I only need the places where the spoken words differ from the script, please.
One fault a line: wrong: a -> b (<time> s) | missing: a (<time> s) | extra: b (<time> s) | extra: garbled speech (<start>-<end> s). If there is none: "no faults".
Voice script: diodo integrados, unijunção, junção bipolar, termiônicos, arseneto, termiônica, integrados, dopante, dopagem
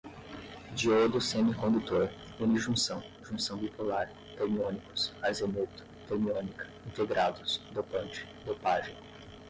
wrong: integrados -> semicondutor (1.2 s)